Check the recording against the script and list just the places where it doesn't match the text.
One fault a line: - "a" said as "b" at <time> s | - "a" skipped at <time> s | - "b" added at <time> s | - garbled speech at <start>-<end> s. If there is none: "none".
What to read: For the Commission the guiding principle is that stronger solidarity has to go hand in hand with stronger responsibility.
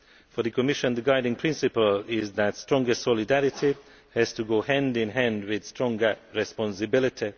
none